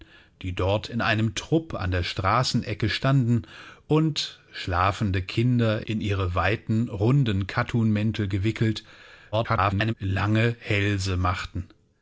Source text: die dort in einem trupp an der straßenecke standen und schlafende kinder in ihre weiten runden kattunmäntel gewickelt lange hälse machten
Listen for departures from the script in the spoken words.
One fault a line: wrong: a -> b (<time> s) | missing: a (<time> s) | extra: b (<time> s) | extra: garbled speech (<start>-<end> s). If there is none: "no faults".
extra: garbled speech (9.3-9.9 s)